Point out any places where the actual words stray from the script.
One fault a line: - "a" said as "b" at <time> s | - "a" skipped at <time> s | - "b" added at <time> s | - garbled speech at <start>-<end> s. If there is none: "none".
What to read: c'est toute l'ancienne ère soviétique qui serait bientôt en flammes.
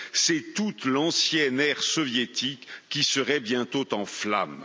none